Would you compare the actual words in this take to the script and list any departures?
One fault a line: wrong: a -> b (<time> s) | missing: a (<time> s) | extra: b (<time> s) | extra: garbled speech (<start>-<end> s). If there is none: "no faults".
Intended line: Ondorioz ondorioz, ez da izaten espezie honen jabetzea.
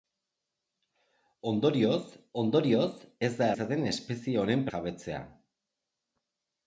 no faults